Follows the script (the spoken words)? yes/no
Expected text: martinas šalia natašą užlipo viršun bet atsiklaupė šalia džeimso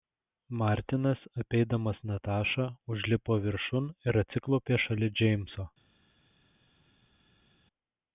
no